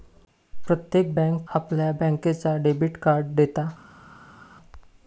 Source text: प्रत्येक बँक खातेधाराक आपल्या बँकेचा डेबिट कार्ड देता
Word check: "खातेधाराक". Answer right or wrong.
wrong